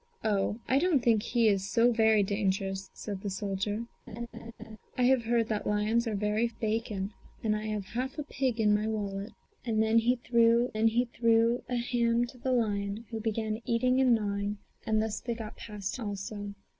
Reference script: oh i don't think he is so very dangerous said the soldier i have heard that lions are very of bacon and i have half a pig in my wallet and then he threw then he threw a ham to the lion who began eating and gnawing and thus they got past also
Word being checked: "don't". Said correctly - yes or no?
yes